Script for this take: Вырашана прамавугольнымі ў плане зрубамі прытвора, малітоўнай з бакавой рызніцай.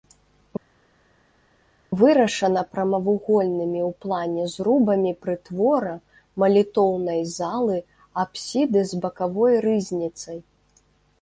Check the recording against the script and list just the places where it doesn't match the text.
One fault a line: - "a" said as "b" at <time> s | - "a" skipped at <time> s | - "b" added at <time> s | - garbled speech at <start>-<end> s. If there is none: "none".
- "залы апсіды" added at 7.4 s